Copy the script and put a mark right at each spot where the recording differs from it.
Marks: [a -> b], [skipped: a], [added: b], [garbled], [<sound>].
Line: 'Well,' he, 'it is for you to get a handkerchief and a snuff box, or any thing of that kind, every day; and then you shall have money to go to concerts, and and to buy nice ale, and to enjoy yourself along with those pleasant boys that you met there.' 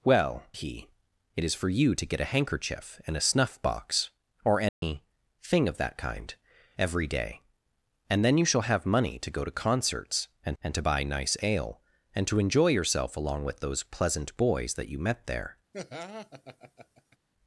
'Well,' he, 'it is for you to get a handkerchief and a snuff box, or any [dropout] thing of that kind, every day; and then you shall have money to go to concerts, and and to buy nice ale, and to enjoy yourself along with those pleasant boys that you met there.' [laugh]